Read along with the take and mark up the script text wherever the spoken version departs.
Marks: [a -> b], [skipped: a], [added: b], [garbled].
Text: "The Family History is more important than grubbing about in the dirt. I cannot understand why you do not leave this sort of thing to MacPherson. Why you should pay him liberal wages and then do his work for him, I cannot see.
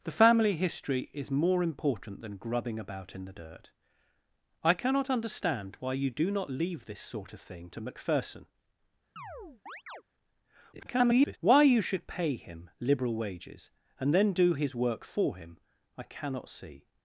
"The Family History is more important than grubbing about in the dirt. I cannot understand why you do not leave this sort of thing to MacPherson. [garbled] Why you should pay him liberal wages and then do his work for him, I cannot see.